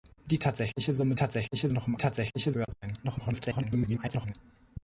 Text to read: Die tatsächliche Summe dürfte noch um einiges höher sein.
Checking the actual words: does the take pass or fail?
fail